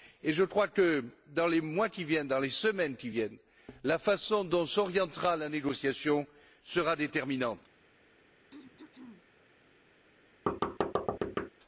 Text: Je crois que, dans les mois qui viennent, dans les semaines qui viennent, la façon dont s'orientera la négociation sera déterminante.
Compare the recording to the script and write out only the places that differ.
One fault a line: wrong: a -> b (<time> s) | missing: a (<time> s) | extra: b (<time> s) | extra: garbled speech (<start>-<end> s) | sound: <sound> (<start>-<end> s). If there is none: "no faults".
sound: throat clearing (8.5-9.3 s)
sound: thud (10.5-11.5 s)